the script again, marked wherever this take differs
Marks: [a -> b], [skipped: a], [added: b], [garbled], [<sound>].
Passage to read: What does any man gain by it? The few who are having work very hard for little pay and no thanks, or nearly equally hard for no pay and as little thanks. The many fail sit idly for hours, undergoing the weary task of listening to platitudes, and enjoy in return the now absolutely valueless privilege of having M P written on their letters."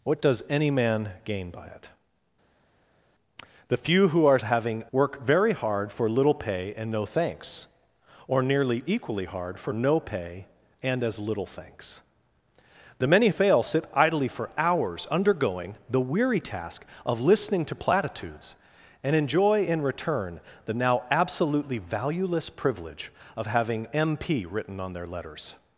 What does any man gain by it? The few who are having work very hard for little pay and no thanks, or nearly equally hard for no pay and as little thanks. The many fail sit idly for hours, undergoing the weary task of listening to platitudes, and enjoy in return the now absolutely valueless privilege of having M P written on their letters."